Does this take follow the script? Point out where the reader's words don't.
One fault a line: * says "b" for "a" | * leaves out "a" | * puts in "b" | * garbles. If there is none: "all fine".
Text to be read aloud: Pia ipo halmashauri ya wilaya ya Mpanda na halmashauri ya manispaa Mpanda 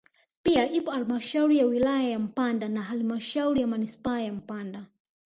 * puts in "ya"